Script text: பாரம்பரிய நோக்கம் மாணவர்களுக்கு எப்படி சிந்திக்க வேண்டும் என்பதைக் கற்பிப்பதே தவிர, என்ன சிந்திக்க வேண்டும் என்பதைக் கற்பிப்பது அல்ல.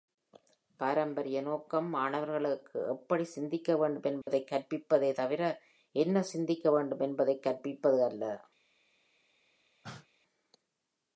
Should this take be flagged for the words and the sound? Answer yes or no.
yes